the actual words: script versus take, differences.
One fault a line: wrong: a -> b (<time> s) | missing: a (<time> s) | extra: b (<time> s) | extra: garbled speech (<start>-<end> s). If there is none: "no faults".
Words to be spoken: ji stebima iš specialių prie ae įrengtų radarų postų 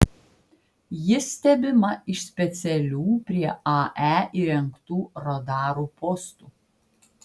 no faults